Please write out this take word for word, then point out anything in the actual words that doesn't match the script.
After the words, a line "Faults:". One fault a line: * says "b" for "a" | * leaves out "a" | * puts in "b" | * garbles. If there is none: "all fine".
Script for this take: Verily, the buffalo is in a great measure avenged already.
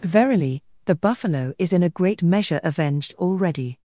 Verily, the buffalo is in a great measure avenged already.
Faults:
all fine